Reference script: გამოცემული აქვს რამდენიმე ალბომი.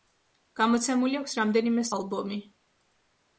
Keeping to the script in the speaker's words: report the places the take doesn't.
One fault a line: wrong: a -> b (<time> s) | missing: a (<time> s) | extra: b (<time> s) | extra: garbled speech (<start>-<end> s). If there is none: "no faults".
no faults